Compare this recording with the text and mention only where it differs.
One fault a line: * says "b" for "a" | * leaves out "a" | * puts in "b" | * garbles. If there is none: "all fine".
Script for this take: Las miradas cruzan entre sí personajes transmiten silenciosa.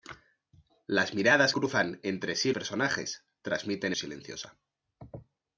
all fine